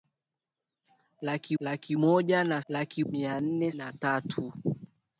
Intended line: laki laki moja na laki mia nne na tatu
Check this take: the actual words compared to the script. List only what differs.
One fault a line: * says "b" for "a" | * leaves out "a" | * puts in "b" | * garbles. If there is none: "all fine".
all fine